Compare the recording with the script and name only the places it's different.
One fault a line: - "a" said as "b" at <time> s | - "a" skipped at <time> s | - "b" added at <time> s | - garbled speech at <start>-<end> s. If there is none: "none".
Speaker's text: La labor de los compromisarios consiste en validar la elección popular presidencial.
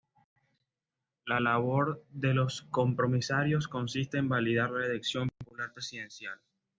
none